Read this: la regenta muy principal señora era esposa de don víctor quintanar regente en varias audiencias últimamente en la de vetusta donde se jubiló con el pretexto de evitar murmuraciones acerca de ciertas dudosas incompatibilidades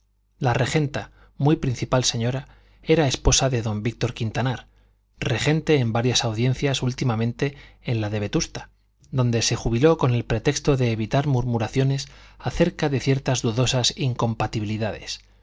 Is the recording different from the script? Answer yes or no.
no